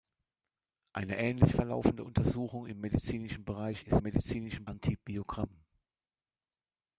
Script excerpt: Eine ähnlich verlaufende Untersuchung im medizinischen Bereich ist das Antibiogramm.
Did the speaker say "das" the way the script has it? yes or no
no